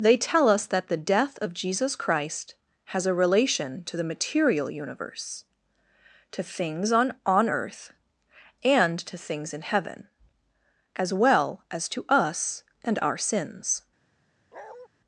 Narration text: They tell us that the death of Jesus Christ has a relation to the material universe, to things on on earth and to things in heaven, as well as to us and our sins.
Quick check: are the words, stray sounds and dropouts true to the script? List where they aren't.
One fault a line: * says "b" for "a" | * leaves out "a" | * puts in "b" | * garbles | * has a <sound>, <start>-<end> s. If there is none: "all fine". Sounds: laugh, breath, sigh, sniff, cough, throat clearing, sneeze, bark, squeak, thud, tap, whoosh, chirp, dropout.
* has a bark, 14.5-14.9 s